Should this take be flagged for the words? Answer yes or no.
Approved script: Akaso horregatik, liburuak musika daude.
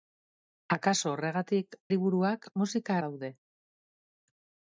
no